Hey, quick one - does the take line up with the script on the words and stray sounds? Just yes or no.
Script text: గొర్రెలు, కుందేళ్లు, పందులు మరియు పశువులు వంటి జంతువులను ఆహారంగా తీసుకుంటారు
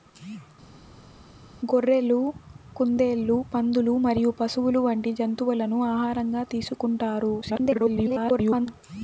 no